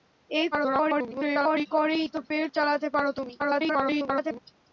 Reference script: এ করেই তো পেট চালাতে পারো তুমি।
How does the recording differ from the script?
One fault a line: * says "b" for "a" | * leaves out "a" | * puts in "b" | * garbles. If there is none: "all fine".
* garbles
* garbles